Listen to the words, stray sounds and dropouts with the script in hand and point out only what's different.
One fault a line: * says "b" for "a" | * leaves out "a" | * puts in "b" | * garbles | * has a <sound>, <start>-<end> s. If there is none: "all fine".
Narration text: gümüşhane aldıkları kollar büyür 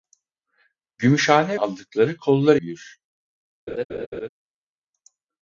* has a laugh, 3.7-4.3 s